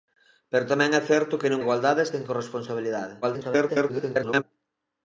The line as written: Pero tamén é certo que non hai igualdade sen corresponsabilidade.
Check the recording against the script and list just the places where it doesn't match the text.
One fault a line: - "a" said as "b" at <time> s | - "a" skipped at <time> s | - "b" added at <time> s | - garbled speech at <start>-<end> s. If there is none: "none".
- "hai" skipped at 1.6 s
- garbled speech at 3.2-4.4 s